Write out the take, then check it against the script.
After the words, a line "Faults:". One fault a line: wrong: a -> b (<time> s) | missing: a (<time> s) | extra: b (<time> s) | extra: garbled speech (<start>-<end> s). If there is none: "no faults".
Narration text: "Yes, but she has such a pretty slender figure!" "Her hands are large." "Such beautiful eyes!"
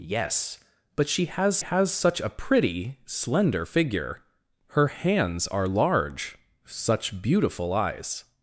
"Yes, but she has has such a pretty slender figure!" "Her hands are large." "Such beautiful eyes!"
Faults:
extra: has (1.6 s)